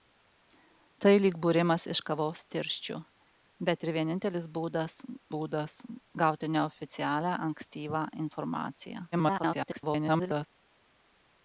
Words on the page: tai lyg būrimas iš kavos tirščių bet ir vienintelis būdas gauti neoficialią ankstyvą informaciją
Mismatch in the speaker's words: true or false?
true